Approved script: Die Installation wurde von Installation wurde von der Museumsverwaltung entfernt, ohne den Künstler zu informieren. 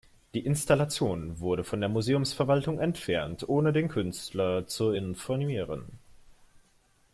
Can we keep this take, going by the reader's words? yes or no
no